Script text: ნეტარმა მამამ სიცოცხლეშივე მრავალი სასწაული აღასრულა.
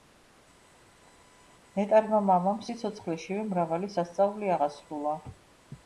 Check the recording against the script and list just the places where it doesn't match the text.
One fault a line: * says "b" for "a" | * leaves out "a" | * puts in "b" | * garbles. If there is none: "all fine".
all fine